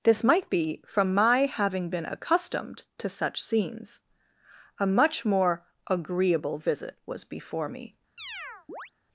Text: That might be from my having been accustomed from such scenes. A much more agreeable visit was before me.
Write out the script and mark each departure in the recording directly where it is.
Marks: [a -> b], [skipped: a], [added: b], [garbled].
[That -> This] might be from my having been accustomed [from -> to] such scenes. A much more agreeable visit was before me.